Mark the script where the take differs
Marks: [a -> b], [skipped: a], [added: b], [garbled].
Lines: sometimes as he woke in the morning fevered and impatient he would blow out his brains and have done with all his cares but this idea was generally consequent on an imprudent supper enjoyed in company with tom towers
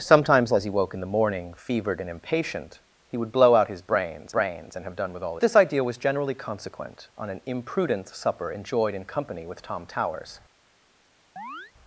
sometimes as he woke in the morning fevered and impatient he would blow out his brains [added: brains] and have done with all [skipped: his cares but] this idea was generally consequent on an imprudent supper enjoyed in company with tom towers